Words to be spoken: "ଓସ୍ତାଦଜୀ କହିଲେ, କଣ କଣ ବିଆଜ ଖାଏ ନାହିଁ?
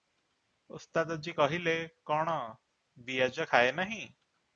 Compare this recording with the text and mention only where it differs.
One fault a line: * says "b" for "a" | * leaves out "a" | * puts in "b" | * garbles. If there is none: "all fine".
* leaves out "କଣ"